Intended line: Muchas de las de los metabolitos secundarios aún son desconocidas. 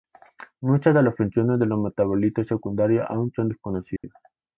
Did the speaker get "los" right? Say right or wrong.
right